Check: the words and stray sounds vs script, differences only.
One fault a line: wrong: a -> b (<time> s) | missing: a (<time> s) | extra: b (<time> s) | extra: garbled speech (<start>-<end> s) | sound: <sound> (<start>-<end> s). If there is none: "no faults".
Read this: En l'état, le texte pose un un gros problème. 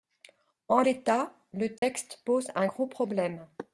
sound: dropout (1.8-1.8 s)
missing: un (2.7 s)